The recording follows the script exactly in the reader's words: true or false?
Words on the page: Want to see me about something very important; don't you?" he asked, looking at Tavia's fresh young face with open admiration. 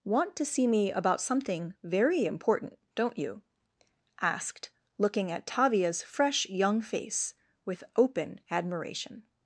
false